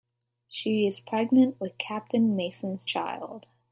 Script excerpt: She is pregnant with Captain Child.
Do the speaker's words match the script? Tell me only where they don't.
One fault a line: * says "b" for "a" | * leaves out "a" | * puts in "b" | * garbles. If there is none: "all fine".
* puts in "Mason's"